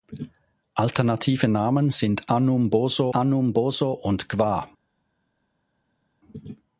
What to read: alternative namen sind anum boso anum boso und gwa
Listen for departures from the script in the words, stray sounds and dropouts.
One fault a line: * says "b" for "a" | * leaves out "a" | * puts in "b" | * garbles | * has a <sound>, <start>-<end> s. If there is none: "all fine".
all fine